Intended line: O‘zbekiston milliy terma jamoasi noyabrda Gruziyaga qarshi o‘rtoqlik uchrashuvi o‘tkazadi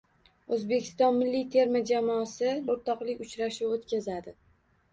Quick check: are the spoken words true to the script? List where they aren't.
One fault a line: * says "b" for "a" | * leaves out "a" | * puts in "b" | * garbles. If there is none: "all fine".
* leaves out "noyabrda Gruziyaga qarshi"